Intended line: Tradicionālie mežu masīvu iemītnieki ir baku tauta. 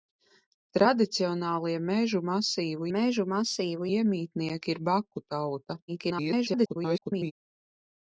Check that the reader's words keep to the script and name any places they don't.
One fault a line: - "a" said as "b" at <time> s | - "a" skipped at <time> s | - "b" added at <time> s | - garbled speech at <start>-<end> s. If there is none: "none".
- "mežu masīvu" added at 3.0 s
- garbled speech at 5.9-7.3 s